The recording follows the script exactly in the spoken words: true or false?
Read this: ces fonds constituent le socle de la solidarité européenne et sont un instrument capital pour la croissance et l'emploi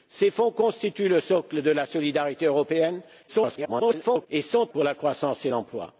false